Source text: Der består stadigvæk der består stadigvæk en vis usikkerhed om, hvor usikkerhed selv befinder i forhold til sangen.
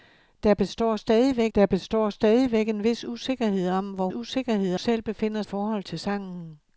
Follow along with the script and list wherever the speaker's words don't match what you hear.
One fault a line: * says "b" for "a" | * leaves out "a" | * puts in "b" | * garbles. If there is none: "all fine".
all fine